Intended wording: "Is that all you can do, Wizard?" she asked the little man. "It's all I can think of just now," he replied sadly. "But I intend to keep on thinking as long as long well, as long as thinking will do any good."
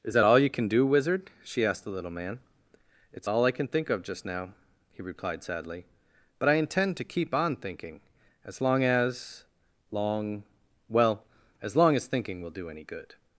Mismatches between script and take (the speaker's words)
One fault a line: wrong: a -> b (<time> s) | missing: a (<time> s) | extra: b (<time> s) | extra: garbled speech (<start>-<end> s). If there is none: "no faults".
no faults